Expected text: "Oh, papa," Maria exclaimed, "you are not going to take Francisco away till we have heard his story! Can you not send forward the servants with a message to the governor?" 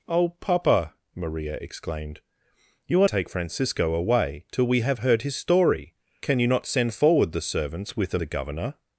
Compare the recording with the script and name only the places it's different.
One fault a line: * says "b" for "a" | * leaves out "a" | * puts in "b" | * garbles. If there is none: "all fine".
* leaves out "not going to"
* leaves out "message to"